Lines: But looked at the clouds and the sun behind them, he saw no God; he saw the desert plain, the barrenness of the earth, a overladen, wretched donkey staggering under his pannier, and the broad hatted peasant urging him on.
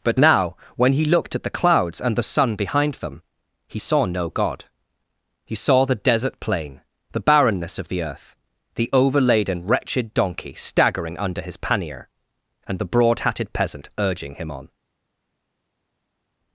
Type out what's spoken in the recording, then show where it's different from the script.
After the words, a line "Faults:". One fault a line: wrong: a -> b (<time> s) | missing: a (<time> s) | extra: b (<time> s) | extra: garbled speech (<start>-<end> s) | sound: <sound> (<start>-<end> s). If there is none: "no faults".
But now, when he looked at the clouds and the sun behind them, he saw no God; he saw the desert plain, the barrenness of the earth, the overladen, wretched donkey staggering under his pannier, and the broad hatted peasant urging him on.
Faults:
extra: now when he (0.2 s)
wrong: a -> the (8.7 s)